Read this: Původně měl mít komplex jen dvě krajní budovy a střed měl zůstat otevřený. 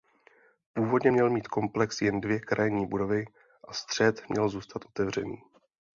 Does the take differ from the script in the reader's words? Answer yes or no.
no